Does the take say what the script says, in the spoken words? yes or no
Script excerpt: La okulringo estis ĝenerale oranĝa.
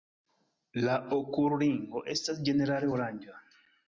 no